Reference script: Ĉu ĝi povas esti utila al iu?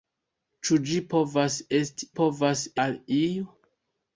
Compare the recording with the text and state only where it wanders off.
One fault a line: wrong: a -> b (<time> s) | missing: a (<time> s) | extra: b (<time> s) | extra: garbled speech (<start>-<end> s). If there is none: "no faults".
wrong: utila -> povas (2.2 s)